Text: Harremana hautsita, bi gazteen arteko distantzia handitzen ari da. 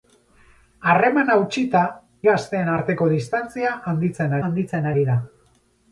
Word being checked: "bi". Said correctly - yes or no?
no